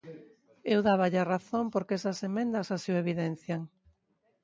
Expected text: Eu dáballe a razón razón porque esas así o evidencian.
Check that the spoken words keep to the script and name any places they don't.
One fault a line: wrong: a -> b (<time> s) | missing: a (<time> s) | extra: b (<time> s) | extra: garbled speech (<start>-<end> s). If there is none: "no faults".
missing: razón (1.6 s)
extra: emendas (2.3 s)